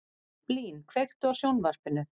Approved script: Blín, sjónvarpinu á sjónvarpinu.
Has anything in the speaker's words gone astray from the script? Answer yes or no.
yes